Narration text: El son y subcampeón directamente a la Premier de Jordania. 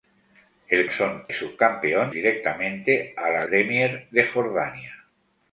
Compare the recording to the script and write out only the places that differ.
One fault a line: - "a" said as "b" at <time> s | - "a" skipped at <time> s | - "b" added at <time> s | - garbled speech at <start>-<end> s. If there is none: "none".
none